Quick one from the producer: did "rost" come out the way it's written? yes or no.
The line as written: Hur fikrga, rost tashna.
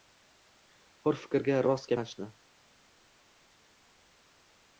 yes